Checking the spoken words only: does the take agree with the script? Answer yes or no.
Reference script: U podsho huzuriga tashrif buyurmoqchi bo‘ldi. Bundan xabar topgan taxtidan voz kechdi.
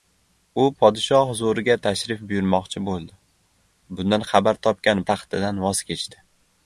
yes